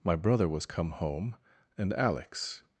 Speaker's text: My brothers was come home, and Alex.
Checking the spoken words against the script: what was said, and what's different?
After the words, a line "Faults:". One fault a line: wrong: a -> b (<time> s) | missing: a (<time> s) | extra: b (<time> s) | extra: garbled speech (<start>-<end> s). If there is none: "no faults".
My brother was come home, and Alex.
Faults:
wrong: brothers -> brother (0.1 s)